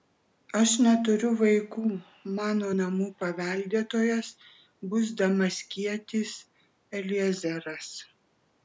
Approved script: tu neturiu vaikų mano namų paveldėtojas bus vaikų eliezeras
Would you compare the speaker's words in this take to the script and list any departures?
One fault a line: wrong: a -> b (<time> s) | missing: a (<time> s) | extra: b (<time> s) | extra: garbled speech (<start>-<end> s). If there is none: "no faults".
wrong: tu -> aš (0.6 s)
wrong: vaikų -> damaskietis (5.3 s)